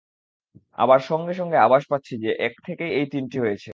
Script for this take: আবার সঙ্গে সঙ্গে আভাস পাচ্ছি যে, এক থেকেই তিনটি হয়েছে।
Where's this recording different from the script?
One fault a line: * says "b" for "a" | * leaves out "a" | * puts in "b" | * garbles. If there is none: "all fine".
* puts in "এই"